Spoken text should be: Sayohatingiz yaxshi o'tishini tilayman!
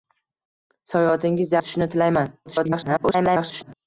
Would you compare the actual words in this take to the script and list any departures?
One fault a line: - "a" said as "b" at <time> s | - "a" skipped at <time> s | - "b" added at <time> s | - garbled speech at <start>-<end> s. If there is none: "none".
- "yaxshi" skipped at 1.6 s
- garbled speech at 2.5-3.7 s